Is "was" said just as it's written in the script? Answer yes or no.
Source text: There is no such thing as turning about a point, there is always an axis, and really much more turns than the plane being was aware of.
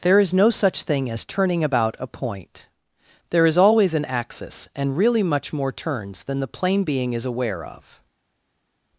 no